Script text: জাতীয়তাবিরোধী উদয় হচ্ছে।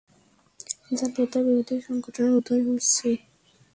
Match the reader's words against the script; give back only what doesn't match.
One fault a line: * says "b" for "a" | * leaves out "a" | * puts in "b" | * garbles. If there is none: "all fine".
* puts in "সংগঠনের"